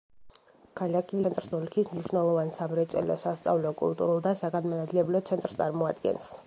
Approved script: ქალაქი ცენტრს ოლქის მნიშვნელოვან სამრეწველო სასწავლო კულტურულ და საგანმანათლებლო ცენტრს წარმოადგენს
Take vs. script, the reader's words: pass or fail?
pass